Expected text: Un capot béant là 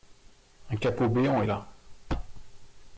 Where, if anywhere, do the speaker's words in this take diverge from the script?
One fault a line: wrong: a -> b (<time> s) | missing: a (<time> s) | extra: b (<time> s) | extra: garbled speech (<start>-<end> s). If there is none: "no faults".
no faults